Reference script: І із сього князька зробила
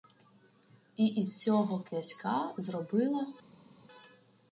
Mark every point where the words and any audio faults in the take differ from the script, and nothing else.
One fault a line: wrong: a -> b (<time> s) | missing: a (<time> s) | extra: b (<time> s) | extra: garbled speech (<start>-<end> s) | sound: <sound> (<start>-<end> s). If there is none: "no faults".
no faults